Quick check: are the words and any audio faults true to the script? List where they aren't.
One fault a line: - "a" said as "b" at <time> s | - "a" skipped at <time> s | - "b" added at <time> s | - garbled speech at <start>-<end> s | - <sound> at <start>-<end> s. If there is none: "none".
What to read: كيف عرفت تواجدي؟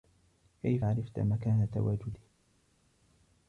- "مكان" added at 1.2 s